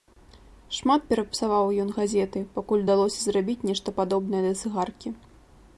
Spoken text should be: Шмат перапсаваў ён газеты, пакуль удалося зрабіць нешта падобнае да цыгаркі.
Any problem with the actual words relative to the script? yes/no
no